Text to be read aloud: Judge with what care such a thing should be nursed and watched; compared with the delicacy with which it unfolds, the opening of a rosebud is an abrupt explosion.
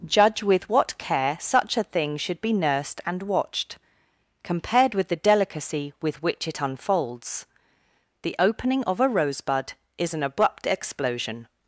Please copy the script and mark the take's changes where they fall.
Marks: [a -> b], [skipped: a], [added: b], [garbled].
Judge with what care such a thing should be nursed and watched; compared with the delicacy with which it unfolds, the opening of a rosebud is an abrupt explosion.